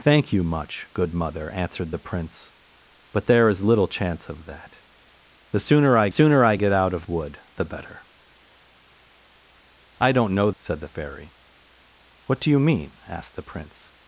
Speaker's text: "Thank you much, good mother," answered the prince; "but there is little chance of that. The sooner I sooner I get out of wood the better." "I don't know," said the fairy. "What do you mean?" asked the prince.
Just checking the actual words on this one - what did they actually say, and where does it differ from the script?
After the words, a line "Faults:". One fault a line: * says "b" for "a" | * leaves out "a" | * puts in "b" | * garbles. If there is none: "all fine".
"Thank you much, good mother," answered the prince; "but there is little chance of that. The sooner I sooner I get out of wood the better." "I don't know," said the fairy. "What do you mean?" asked the prince.
Faults:
all fine